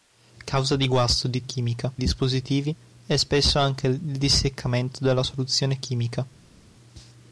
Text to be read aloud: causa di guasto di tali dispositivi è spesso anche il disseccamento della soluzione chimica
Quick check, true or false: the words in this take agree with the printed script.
false